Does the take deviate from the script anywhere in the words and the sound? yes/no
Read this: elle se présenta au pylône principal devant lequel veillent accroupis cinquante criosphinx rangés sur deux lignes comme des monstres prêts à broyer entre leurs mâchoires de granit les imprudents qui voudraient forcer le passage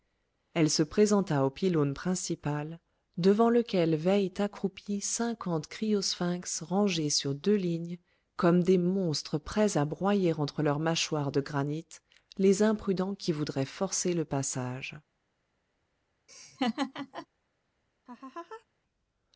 yes